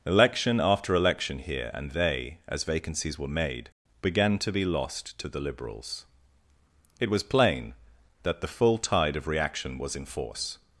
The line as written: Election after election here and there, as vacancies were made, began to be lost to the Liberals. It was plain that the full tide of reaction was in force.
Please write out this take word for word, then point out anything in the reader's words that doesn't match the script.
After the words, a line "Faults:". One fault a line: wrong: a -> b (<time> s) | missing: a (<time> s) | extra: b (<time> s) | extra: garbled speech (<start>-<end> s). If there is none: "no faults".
Election after election here and they, as vacancies were made, began to be lost to the Liberals. It was plain that the full tide of reaction was in force.
Faults:
wrong: there -> they (1.9 s)